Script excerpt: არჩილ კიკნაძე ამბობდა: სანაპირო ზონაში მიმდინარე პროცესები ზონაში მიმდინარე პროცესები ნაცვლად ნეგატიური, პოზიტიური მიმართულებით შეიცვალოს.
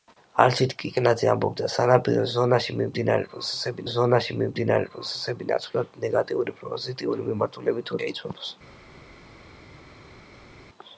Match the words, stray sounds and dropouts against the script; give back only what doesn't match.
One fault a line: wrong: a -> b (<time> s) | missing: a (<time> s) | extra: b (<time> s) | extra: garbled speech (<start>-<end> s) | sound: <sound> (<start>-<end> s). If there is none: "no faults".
no faults